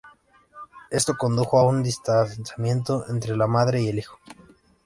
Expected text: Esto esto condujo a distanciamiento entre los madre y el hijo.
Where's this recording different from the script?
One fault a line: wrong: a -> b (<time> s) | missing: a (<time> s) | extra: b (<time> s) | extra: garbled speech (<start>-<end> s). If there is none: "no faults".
missing: esto (1.1 s)
extra: un (1.7 s)
wrong: los -> la (3.3 s)